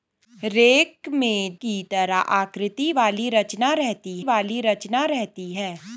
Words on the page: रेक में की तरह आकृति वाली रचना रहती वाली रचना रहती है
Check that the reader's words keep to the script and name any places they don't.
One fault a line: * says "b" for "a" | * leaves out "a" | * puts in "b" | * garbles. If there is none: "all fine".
all fine